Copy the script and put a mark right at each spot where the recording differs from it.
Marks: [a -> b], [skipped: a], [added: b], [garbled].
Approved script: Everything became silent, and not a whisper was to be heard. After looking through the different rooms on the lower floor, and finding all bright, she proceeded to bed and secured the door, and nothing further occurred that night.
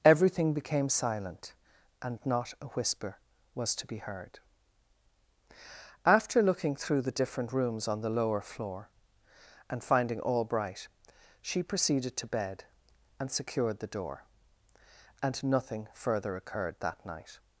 Everything became silent, and not a whisper was to be heard. After looking through the different rooms on the lower floor, and finding all bright, she proceeded to bed and secured the door, and nothing further occurred that night.